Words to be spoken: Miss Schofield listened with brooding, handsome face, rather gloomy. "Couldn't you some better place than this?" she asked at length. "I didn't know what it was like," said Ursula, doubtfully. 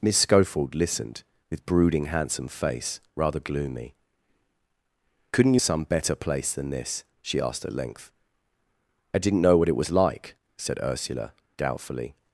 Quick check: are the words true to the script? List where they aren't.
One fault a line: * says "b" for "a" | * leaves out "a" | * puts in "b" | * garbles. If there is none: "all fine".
all fine